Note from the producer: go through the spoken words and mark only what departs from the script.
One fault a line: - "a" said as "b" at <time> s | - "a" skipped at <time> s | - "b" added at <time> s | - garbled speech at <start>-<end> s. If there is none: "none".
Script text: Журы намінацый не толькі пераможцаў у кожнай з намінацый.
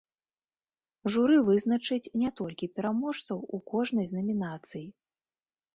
- "намінацый" said as "вызначыць" at 1.5 s